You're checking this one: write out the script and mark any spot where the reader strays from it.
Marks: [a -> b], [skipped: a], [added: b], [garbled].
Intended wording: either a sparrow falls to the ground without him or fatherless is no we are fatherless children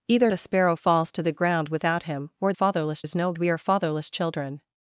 either a sparrow falls to the ground without him or fatherless is no we are fatherless children